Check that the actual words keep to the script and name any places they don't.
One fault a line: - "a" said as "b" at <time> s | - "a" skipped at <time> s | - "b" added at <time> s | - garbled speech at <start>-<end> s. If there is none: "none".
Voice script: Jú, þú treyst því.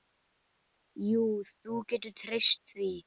- "getur" added at 1.9 s